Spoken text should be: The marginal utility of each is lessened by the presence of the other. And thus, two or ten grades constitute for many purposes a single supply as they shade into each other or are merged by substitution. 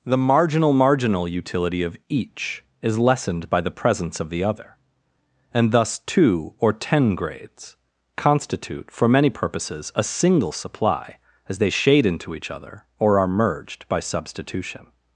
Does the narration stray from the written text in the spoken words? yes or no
yes